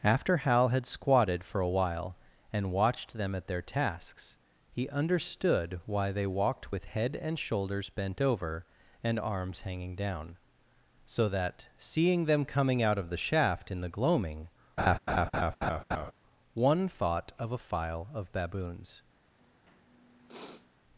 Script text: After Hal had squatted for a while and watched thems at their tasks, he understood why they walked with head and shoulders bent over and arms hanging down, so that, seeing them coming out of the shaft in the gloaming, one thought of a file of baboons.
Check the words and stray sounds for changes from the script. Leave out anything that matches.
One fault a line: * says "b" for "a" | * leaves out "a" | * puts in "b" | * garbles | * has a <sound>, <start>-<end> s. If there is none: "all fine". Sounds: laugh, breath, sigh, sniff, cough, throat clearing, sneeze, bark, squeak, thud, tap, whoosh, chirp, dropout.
* says "them" for "thems"
* has a laugh, 14.8-16.1 s
* has a sniff, 19.4-20.7 s